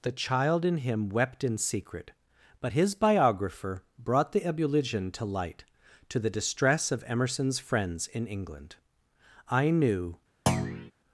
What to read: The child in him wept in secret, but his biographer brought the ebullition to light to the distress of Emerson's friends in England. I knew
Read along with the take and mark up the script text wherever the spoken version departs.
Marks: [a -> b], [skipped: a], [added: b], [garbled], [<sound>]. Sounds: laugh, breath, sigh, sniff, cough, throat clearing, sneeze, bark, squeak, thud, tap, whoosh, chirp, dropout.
The child in him wept in secret, but his biographer brought the ebullition to light to the distress of Emerson's friends in England. I knew [thud]